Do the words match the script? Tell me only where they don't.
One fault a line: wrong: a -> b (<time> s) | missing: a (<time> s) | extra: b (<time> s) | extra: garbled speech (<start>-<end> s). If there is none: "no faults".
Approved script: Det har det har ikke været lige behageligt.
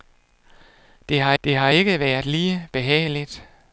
no faults